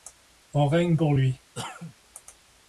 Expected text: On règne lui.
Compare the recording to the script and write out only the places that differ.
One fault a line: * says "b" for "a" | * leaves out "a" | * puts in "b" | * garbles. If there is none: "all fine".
* puts in "pour"